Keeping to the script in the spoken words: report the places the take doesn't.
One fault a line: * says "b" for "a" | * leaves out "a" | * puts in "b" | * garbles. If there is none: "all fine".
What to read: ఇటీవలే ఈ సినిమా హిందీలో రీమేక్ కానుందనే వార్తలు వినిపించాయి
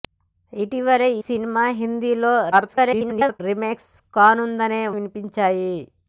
* leaves out "ఈ"
* garbles
* leaves out "వార్తలు"